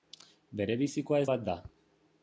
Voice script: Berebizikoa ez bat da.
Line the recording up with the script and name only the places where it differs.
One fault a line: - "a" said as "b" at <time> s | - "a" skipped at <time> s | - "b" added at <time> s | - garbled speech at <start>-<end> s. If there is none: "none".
none